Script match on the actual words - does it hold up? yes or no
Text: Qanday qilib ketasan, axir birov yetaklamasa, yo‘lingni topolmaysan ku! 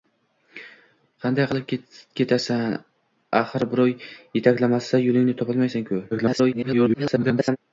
no